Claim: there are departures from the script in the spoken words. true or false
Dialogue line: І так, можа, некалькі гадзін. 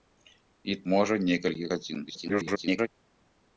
true